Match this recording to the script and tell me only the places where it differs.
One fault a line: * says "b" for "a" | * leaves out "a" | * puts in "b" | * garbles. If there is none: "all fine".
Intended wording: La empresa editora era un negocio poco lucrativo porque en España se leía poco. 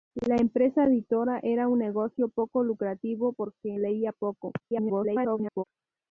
* leaves out "en España se"
* garbles